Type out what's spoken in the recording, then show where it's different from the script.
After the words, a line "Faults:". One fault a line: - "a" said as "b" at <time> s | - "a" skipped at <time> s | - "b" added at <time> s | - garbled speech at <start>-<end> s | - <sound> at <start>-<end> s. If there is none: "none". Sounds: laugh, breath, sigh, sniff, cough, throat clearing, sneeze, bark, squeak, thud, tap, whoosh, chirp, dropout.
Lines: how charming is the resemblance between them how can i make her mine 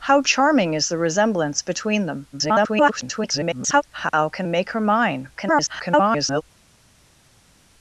how charming is the resemblance between them [garbled] how can make her mine [garbled]
Faults:
- garbled speech at 2.3-3.8 s
- "i" skipped at 4.5 s
- garbled speech at 5.3-6.4 s